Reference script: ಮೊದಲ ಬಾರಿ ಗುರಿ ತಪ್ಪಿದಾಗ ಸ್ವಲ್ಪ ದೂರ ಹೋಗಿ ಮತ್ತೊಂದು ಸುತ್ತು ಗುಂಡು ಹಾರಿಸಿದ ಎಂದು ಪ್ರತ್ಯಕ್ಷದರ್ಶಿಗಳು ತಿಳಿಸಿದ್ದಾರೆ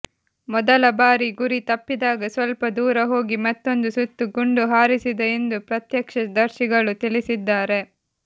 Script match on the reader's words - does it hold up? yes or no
yes